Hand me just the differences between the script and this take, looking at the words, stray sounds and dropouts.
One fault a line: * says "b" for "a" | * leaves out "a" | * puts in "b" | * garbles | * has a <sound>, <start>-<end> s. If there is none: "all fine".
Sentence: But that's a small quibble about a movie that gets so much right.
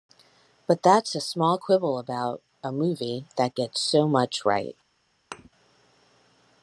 * has a thud, 5.3-5.5 s